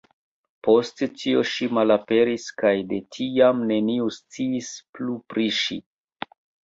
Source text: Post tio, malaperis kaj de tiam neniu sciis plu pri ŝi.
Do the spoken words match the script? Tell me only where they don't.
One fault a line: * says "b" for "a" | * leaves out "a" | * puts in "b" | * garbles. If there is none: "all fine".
* puts in "ŝi"